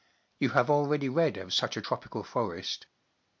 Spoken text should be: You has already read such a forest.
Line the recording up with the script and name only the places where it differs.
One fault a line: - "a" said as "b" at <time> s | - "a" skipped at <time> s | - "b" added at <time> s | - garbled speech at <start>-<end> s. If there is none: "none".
- "has" said as "have" at 0.5 s
- "of" added at 1.4 s
- "tropical" added at 1.8 s